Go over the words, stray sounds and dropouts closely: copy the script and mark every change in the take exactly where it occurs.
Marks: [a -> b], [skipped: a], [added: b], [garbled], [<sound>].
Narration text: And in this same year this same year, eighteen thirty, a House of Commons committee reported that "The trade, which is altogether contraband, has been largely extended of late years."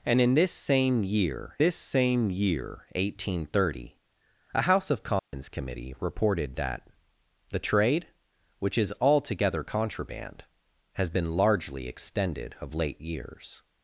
And in this same year this same year, eighteen thirty, a House of Commons [dropout] committee reported that "The trade, which is altogether contraband, has been largely extended of late years."